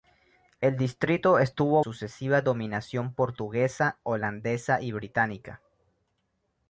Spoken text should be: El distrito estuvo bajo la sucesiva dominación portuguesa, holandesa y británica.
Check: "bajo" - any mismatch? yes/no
yes